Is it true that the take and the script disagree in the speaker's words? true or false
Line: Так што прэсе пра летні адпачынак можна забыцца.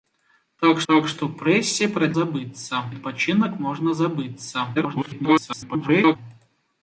true